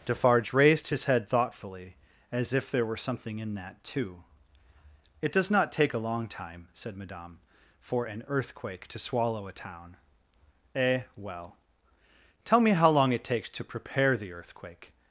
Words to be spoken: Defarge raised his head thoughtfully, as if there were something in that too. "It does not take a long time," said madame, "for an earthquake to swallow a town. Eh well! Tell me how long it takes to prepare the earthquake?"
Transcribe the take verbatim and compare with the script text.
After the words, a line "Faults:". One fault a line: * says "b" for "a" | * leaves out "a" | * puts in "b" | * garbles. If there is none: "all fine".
Defarge raised his head thoughtfully, as if there were something in that too. "It does not take a long time," said madame, "for an earthquake to swallow a town. Eh well! Tell me how long it takes to prepare the earthquake?"
Faults:
all fine